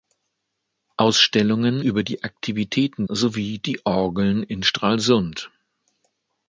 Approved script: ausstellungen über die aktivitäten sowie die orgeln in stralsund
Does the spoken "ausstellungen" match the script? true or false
true